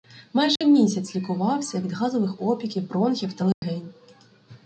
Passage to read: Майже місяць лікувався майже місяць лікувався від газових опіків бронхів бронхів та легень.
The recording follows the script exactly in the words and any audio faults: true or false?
false